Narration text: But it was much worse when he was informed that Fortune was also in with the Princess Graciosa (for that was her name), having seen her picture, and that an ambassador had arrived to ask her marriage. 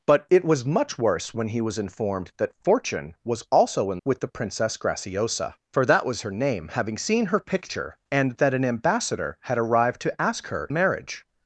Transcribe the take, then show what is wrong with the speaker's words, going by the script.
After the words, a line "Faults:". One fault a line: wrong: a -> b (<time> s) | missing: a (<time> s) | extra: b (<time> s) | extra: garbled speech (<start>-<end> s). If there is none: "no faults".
But it was much worse when he was informed that Fortune was also in with the Princess Graciosa (for that was her name), having seen her picture, and that an ambassador had arrived to ask her marriage.
Faults:
no faults